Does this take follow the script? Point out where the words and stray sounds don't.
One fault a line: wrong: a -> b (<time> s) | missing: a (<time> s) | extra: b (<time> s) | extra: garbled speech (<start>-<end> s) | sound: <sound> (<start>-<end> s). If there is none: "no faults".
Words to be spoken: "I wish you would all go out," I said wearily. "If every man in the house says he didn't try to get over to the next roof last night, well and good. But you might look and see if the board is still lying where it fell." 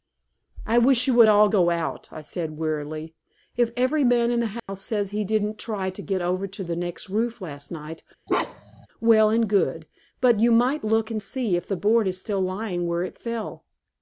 sound: dropout (4.6-4.7 s)
sound: bark (8.3-8.9 s)